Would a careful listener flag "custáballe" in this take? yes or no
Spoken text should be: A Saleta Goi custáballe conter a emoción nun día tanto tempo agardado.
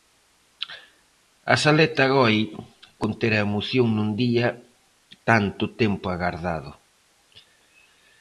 yes